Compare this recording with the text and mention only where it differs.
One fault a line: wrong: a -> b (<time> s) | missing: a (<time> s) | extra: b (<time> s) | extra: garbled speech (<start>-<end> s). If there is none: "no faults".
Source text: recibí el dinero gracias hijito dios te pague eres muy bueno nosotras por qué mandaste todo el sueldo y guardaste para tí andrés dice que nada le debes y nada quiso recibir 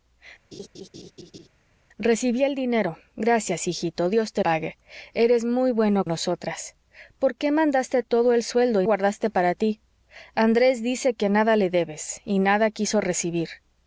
no faults